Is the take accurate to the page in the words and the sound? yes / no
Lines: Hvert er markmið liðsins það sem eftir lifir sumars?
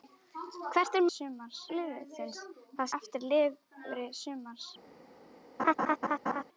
no